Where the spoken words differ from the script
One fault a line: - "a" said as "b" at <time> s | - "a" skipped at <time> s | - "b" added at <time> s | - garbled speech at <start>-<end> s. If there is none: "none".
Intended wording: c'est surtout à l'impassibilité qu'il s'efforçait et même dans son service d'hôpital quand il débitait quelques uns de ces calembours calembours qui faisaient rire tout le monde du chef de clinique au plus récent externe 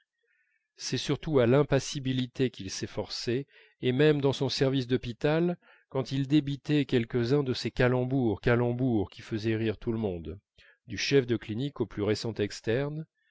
none